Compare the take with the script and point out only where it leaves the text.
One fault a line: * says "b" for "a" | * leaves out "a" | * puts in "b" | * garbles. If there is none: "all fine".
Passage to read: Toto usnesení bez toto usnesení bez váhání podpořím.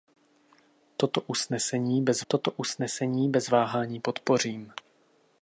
all fine